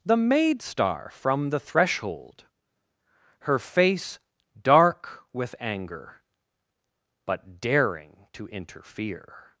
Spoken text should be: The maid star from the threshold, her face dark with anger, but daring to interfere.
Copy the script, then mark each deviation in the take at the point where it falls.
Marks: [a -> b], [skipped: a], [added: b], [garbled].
The maid star from the threshold, her face dark with anger, but daring to interfere.